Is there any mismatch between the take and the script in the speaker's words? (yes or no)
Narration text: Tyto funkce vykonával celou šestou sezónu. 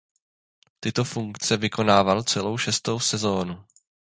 no